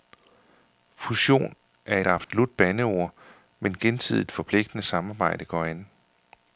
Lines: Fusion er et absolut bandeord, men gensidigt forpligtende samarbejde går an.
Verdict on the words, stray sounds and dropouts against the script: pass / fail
fail